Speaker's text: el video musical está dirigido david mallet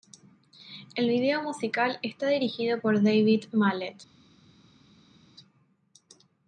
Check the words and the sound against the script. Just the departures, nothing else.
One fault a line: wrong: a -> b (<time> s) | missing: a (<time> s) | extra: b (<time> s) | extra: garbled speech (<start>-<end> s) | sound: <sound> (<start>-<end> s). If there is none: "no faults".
extra: por (2.8 s)